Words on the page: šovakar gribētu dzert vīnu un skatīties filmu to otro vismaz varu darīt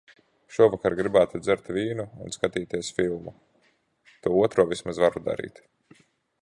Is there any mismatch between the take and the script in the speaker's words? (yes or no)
no